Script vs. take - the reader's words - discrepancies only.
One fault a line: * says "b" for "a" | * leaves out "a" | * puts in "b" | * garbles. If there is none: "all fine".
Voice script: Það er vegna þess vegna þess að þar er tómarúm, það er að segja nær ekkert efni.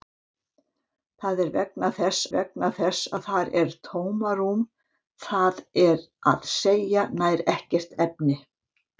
all fine